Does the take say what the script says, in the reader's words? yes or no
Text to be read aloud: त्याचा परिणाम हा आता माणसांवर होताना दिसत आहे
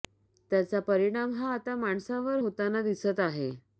yes